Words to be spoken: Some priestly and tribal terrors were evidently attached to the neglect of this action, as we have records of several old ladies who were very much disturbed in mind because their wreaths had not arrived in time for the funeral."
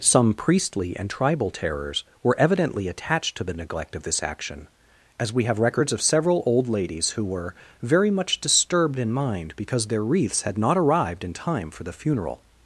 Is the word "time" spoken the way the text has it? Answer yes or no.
yes